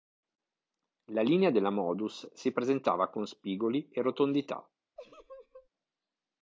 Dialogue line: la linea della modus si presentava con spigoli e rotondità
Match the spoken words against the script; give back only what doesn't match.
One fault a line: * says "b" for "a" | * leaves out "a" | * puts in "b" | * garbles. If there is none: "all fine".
all fine